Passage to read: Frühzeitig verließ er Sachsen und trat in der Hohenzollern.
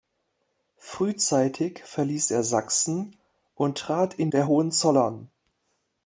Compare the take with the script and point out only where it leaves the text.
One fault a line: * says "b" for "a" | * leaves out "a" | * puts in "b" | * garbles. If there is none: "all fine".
all fine